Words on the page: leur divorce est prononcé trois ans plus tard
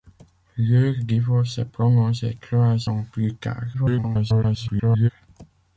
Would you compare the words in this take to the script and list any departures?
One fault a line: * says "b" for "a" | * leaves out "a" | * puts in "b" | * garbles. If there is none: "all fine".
* garbles